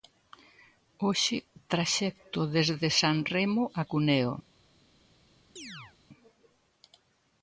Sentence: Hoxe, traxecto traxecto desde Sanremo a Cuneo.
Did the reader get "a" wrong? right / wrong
right